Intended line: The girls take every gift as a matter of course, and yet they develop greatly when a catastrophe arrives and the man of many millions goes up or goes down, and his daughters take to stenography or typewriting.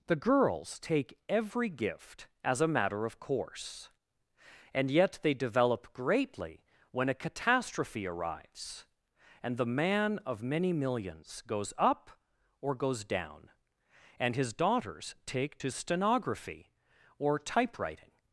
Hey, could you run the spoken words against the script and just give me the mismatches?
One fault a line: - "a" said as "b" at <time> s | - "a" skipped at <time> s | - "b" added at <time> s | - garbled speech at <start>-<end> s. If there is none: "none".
none